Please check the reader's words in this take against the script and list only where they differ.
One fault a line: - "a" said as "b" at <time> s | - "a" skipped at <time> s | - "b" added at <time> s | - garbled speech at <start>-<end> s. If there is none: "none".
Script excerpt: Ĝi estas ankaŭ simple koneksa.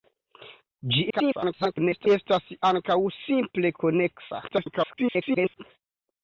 - garbled speech at 1.1-2.1 s
- garbled speech at 4.5-5.6 s